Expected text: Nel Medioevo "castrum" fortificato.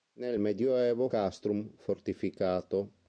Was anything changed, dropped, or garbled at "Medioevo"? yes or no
no